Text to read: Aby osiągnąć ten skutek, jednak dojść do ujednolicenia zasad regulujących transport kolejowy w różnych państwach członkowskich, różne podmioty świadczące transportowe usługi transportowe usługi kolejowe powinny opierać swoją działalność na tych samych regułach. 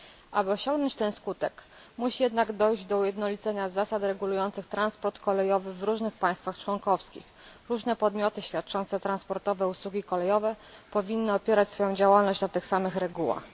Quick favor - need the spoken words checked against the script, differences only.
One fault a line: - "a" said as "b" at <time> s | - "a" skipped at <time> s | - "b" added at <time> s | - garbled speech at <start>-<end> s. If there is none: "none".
- "musi" added at 2.0 s
- "transportowe usługi" skipped at 10.0 s